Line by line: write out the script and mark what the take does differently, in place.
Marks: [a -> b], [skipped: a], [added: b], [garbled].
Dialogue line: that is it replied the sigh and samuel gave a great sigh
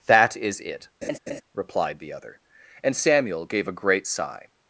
that is it replied the [sigh -> other] and samuel gave a great sigh